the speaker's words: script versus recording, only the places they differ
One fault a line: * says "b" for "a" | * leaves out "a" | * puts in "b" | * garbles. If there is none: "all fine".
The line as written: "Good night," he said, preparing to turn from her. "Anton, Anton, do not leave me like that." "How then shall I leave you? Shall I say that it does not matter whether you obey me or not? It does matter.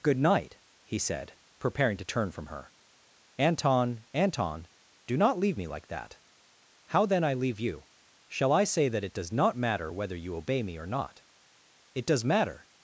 * leaves out "shall"